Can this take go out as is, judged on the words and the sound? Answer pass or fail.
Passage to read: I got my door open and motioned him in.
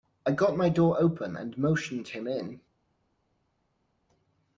pass